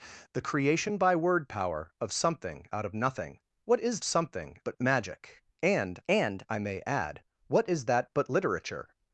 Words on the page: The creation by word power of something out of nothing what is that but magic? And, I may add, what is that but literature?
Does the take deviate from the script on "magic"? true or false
false